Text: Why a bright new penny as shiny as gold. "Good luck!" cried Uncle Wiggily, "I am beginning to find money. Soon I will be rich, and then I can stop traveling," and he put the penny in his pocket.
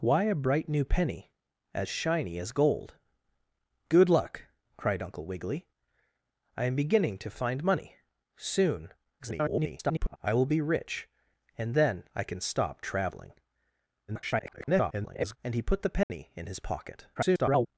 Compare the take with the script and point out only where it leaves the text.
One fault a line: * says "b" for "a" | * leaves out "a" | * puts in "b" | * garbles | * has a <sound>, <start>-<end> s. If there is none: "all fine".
* garbles
* garbles
* has a dropout, 16.0-16.1 s
* garbles